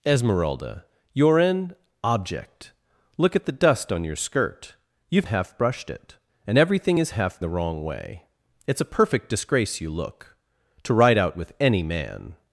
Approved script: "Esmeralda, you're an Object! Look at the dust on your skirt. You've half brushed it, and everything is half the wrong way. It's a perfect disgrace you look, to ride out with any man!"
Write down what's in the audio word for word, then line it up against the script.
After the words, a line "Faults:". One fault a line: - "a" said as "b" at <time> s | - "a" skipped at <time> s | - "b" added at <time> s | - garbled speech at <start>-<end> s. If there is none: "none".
"Esmeralda, you're an Object! Look at the dust on your skirt. You've half brushed it, and everything is half the wrong way. It's a perfect disgrace you look, to ride out with any man!"
Faults:
none